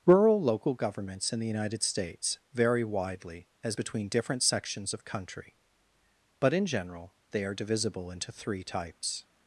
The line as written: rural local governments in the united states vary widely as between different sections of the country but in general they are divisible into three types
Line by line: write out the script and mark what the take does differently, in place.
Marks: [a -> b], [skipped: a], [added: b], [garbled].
rural local governments in the united states vary widely as between different sections of [skipped: the] country but in general they are divisible into three types